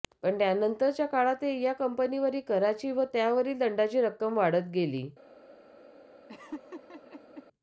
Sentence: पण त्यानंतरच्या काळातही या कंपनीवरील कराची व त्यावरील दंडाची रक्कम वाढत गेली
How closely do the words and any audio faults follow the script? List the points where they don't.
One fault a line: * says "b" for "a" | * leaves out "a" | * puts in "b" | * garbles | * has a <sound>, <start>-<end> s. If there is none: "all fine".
* has a laugh, 6.3-7.4 s